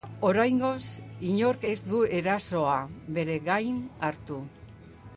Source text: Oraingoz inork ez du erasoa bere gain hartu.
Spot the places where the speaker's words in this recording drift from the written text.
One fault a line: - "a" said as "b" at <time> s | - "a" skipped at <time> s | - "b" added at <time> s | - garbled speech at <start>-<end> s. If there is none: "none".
none